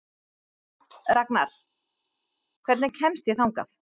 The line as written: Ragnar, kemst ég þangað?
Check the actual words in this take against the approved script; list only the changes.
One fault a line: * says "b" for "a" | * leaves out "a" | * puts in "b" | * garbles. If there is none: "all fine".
* puts in "hvernig"